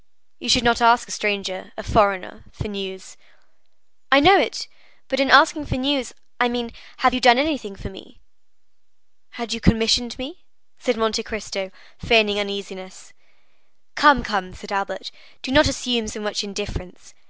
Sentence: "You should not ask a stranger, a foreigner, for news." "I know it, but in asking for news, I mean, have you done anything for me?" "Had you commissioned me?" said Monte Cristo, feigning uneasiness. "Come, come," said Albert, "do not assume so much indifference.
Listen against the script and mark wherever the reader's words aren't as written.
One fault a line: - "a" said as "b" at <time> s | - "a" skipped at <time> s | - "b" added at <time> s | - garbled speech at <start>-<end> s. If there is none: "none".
none